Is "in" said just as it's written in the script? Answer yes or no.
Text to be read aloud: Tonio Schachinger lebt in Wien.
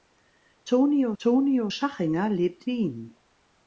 no